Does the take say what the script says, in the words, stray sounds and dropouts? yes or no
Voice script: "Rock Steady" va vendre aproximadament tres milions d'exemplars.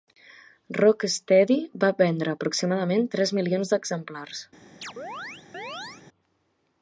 no